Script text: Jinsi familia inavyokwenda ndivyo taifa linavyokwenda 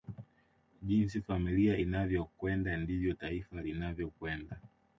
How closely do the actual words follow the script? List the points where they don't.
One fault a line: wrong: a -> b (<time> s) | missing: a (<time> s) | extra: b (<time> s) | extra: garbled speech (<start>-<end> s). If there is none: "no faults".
no faults